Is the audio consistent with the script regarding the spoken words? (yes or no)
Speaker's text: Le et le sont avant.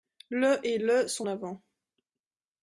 yes